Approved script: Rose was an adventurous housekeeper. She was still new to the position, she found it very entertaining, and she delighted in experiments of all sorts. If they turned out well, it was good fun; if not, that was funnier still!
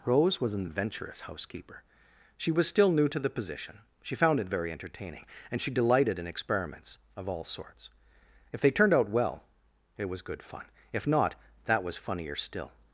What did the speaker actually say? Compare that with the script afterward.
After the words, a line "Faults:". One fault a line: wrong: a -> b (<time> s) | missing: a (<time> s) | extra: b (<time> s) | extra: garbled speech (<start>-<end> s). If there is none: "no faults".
Rose was an adventurous housekeeper. She was still new to the position, she found it very entertaining, and she delighted in experiments of all sorts. If they turned out well, it was good fun; if not, that was funnier still!
Faults:
no faults